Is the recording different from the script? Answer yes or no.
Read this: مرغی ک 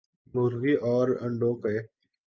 yes